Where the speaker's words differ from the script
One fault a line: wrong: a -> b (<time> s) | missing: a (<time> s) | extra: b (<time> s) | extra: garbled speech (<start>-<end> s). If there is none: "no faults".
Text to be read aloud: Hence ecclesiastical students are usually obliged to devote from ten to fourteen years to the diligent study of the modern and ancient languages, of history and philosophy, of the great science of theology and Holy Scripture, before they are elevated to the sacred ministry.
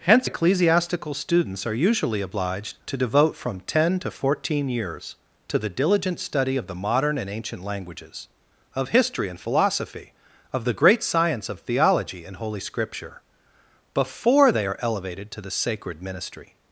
no faults